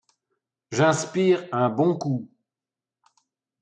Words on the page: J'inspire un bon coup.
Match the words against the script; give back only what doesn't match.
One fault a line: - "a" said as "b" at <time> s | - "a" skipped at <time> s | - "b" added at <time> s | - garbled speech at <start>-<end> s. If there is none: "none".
none